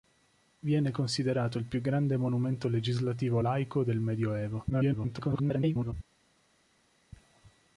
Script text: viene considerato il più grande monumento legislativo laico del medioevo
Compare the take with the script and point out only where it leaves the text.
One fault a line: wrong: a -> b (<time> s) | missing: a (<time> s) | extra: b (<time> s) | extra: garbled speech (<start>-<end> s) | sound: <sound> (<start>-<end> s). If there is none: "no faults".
extra: garbled speech (4.7-5.9 s)